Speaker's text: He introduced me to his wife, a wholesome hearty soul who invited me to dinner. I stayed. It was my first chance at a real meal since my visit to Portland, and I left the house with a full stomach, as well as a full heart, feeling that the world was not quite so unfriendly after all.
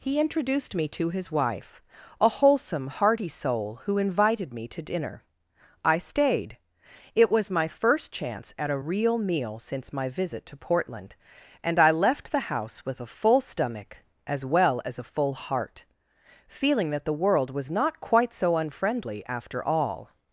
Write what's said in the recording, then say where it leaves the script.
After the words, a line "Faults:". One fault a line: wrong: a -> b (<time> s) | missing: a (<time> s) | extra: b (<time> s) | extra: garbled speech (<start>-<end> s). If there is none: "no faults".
He introduced me to his wife, a wholesome hearty soul who invited me to dinner. I stayed. It was my first chance at a real meal since my visit to Portland, and I left the house with a full stomach, as well as a full heart, feeling that the world was not quite so unfriendly after all.
Faults:
no faults